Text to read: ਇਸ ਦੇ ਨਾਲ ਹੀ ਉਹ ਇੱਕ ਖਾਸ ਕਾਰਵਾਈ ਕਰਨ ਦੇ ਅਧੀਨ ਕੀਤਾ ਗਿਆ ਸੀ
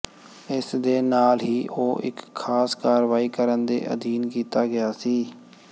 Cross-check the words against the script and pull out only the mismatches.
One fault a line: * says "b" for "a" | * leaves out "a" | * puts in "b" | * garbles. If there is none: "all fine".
all fine